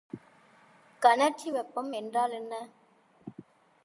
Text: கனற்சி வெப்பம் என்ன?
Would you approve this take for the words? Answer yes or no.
no